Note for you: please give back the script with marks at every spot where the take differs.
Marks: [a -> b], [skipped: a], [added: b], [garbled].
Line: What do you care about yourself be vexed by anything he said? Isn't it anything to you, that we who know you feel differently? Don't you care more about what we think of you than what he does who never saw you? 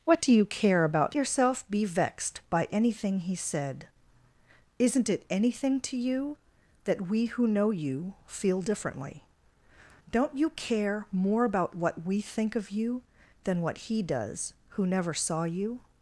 What do you care about yourself be vexed by anything he said? Isn't it anything to you, that we who know you feel differently? Don't you care more about what we think of you than what he does who never saw you?